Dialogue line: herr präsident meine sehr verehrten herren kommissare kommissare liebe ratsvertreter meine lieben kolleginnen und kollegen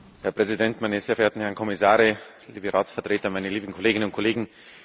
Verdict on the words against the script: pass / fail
fail